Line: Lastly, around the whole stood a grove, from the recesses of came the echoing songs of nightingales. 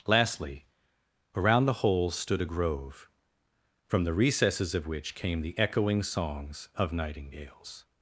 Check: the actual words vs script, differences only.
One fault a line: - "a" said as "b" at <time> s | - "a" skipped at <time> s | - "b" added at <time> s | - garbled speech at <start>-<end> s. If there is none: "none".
- "which" added at 4.9 s